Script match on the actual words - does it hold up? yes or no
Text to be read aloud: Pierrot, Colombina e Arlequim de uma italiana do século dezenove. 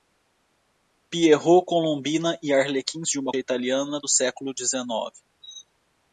yes